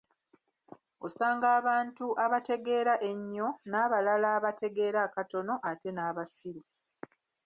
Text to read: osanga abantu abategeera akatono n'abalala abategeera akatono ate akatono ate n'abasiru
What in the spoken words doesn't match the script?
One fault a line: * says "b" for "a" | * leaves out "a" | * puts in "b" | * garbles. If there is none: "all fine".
* says "ennyo" for "akatono"
* leaves out "akatono ate"